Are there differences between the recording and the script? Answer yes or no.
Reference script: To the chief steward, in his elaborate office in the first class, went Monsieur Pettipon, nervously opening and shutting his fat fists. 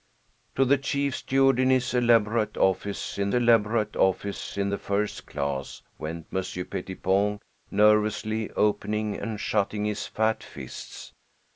yes